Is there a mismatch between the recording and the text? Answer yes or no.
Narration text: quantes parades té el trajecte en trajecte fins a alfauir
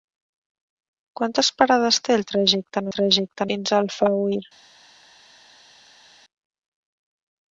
no